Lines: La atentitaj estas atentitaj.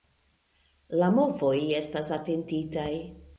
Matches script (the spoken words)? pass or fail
fail